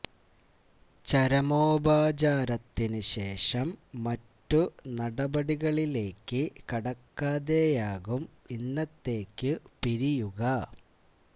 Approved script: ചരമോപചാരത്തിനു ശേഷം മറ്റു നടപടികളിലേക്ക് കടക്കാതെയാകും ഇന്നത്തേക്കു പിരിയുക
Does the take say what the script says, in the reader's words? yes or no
yes